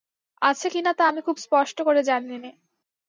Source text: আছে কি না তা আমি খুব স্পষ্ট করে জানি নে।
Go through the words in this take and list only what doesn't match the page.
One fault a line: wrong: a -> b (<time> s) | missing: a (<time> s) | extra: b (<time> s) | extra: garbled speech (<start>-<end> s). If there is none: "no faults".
no faults